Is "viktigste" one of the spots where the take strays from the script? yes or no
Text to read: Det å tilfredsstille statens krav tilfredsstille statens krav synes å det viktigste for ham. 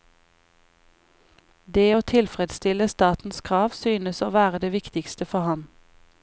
no